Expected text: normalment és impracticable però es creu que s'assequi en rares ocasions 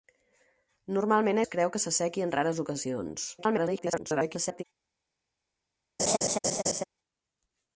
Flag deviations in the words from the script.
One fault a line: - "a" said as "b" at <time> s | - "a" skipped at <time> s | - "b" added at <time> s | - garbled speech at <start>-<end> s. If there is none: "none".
- "és impracticable però" skipped at 1.4 s
- garbled speech at 3.4-4.6 s